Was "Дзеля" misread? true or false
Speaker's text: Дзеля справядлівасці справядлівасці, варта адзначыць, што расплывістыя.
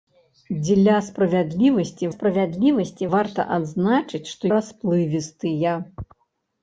false